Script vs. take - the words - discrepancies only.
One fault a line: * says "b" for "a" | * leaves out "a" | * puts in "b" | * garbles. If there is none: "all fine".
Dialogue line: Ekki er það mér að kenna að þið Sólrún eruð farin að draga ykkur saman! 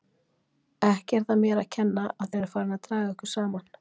* leaves out "þið Sólrún"